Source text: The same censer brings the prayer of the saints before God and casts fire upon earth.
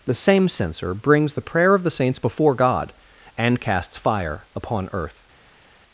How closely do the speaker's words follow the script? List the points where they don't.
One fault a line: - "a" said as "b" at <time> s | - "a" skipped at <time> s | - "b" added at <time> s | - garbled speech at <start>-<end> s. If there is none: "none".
none